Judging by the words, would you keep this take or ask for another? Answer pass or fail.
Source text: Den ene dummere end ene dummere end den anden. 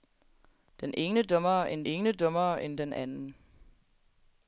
pass